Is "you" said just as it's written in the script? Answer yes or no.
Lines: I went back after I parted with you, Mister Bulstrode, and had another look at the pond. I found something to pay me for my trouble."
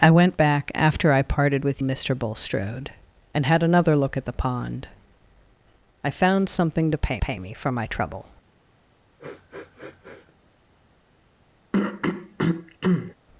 no